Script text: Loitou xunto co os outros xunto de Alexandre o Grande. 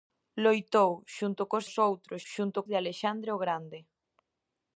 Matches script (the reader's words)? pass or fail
pass